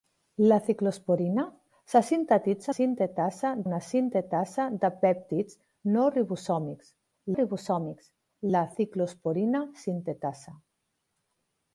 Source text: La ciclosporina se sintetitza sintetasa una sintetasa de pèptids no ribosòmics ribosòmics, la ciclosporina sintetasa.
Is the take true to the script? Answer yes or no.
yes